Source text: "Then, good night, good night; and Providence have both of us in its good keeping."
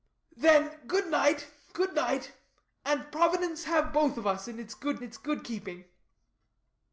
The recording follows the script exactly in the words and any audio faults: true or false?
false